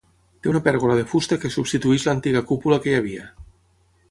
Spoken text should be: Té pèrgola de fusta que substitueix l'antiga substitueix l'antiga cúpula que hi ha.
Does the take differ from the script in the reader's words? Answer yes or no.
yes